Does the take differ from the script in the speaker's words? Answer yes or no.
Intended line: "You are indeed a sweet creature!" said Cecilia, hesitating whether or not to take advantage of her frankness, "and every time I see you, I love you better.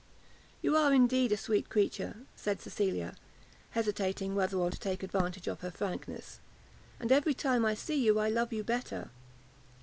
yes